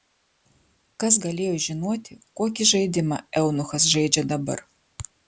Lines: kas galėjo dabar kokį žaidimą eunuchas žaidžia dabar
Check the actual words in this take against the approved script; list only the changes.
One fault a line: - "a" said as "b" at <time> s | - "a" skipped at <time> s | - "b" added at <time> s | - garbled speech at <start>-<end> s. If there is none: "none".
- "dabar" said as "žinoti" at 1.6 s